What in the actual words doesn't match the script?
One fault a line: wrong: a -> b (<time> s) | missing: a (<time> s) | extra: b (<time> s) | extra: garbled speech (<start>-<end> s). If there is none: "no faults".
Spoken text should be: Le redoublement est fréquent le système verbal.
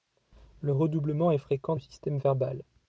no faults